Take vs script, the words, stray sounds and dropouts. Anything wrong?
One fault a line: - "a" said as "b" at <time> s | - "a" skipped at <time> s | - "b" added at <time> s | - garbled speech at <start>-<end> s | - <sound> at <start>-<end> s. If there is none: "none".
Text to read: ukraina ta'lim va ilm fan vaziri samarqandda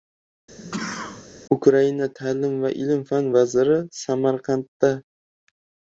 - sneeze at 0.6-1.3 s